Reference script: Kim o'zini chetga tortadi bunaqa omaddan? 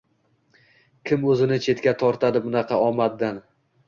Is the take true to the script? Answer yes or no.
yes